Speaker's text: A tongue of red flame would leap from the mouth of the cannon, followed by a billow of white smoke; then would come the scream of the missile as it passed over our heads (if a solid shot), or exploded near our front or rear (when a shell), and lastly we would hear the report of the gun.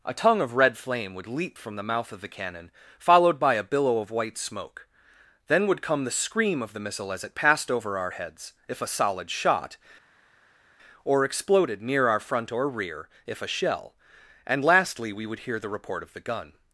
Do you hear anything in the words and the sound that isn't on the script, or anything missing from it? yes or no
yes